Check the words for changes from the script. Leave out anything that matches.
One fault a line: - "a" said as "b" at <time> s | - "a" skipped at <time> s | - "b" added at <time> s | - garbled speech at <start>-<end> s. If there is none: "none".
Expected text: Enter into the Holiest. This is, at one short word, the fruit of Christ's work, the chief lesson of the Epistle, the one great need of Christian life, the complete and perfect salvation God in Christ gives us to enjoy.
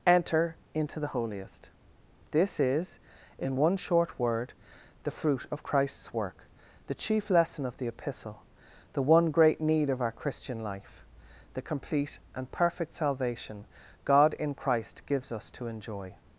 - "at" said as "in" at 3.4 s
- "our" added at 10.0 s